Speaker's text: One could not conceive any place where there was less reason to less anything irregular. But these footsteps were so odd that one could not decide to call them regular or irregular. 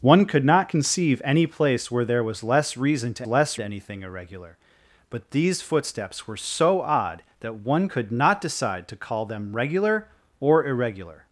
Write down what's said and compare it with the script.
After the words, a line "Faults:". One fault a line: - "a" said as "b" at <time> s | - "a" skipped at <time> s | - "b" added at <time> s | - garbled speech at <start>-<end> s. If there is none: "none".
One could not conceive any place where there was less reason to less anything irregular. But these footsteps were so odd that one could not decide to call them regular or irregular.
Faults:
none